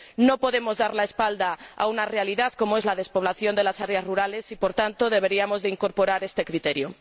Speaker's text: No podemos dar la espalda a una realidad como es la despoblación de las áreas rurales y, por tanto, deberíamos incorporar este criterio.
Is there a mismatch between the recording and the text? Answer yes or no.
no